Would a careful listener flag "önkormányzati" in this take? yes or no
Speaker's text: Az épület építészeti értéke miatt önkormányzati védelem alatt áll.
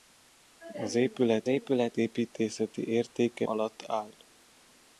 yes